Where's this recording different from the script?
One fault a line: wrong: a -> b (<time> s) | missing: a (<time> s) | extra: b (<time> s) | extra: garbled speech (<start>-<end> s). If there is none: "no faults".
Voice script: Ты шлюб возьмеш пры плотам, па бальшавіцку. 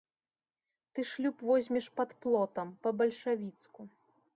wrong: пры -> пад (2.0 s)